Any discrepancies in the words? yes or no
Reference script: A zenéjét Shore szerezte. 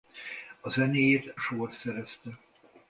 no